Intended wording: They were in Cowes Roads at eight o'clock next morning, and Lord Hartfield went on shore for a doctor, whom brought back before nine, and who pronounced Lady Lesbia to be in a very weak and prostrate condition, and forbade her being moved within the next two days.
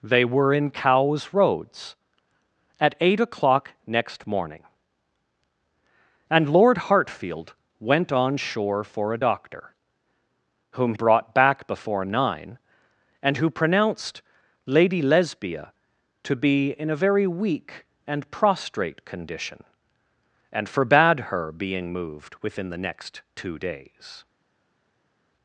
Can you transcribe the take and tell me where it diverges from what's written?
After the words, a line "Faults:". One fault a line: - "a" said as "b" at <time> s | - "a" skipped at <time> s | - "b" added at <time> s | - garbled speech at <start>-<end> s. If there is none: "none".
They were in Cowes Roads at eight o'clock next morning, and Lord Hartfield went on shore for a doctor, whom brought back before nine, and who pronounced Lady Lesbia to be in a very weak and prostrate condition, and forbade her being moved within the next two days.
Faults:
none